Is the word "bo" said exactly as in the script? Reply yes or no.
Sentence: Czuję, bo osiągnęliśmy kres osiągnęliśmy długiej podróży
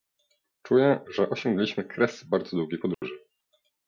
no